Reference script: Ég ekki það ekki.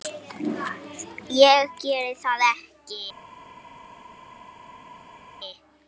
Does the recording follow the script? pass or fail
fail